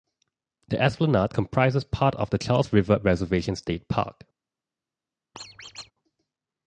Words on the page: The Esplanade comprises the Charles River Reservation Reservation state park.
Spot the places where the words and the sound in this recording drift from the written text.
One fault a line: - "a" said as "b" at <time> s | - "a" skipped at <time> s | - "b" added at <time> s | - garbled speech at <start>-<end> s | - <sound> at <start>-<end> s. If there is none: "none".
- "part of" added at 1.8 s
- "Reservation" skipped at 3.6 s
- squeak at 5.3-5.9 s